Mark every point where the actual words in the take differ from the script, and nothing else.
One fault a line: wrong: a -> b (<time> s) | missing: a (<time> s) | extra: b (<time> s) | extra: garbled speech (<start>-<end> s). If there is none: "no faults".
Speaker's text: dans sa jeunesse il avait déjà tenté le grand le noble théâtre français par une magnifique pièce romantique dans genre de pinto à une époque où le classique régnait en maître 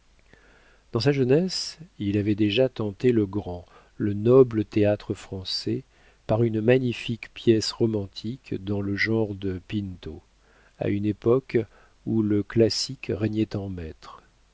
extra: le (8.8 s)